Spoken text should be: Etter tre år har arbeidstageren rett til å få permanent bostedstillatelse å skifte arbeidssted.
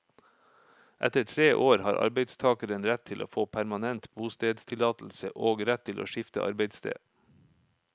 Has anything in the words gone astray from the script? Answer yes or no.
yes